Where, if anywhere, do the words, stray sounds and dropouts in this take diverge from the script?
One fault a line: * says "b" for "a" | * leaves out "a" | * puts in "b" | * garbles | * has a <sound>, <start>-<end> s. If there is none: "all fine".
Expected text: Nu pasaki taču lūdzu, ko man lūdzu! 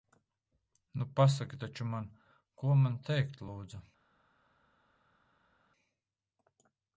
* says "man" for "lūdzu"
* puts in "teikt"